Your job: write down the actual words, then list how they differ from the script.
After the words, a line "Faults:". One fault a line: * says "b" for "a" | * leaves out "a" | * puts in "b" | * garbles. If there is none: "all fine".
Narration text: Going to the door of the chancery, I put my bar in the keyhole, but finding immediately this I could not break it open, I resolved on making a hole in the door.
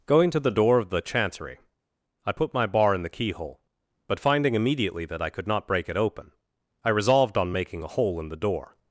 Going to the door of the chancery, I put my bar in the keyhole, but finding immediately that I could not break it open, I resolved on making a hole in the door.
Faults:
* says "that" for "this"